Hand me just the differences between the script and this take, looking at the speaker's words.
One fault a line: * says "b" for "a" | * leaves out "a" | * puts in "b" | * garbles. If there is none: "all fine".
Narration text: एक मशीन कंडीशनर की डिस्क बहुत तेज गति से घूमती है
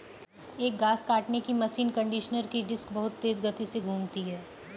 * puts in "घास काटने की"